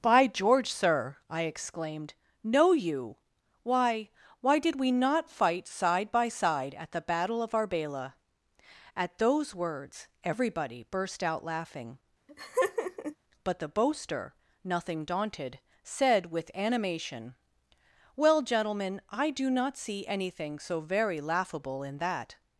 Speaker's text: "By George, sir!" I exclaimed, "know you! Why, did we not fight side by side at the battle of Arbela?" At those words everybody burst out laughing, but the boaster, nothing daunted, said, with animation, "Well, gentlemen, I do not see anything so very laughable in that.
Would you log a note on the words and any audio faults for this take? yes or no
yes